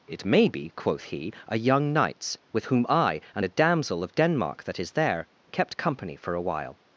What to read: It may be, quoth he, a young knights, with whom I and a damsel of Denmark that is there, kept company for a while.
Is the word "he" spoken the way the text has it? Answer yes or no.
yes